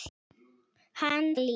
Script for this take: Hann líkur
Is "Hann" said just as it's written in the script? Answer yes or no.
yes